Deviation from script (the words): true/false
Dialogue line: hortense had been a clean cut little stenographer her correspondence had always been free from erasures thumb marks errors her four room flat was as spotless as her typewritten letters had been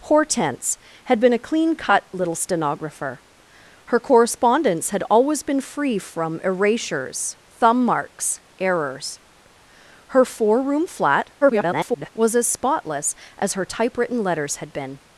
true